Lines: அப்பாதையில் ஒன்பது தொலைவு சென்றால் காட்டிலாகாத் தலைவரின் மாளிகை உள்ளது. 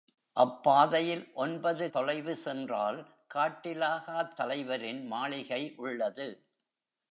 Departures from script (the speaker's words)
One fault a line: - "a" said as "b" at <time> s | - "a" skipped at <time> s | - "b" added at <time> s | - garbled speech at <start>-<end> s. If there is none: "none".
none